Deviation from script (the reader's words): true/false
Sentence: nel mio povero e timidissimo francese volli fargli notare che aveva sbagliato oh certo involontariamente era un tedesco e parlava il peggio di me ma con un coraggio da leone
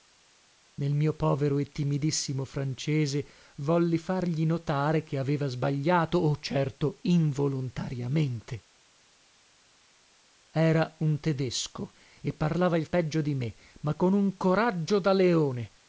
false